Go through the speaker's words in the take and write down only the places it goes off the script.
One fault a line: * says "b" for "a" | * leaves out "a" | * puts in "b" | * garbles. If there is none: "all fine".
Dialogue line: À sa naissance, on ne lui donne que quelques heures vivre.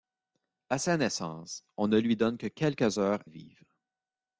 all fine